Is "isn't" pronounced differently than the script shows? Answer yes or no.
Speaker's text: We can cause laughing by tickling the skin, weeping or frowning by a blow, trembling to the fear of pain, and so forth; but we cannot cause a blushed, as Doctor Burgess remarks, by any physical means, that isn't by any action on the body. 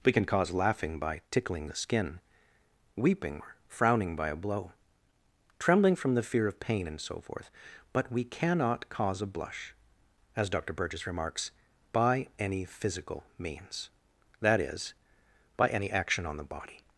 yes